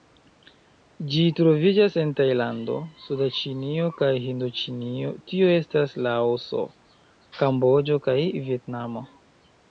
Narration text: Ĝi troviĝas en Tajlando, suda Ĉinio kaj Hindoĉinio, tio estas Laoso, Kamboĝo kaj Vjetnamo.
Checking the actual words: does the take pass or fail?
pass